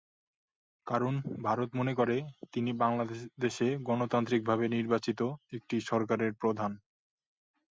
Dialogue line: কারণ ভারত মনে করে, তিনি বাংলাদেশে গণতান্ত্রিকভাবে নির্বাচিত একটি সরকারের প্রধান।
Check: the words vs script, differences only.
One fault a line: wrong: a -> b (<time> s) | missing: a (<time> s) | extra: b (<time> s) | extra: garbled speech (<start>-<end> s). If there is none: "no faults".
no faults